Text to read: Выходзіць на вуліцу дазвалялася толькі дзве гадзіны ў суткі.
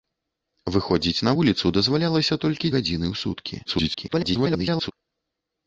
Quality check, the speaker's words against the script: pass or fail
fail